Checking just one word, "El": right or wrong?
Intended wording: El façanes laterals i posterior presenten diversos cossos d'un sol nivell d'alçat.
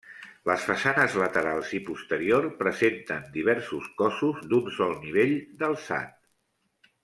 wrong